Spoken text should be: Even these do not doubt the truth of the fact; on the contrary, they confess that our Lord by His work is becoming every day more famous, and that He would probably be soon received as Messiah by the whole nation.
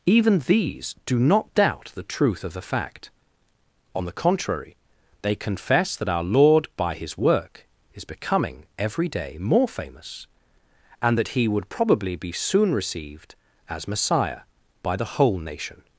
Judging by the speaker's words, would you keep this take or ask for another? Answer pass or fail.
pass